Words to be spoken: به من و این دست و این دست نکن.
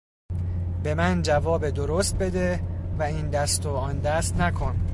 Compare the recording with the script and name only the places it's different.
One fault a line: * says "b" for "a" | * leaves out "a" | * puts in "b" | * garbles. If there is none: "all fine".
* puts in "جواب درست بده"
* says "آن" for "این"